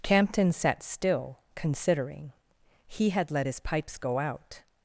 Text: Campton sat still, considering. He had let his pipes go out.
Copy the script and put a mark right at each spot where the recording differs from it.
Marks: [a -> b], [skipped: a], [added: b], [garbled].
Campton sat still, considering. He had let his pipes go out.